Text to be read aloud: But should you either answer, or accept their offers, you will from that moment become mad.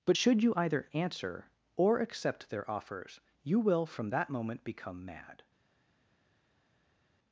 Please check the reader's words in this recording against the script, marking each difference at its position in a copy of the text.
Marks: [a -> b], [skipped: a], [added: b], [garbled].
But should you either answer, or accept their offers, you will from that moment become mad.